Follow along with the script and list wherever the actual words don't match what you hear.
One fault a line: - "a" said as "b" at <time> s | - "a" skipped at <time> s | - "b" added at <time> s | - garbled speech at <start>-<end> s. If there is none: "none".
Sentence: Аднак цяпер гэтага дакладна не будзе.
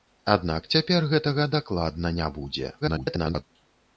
- garbled speech at 2.8-3.4 s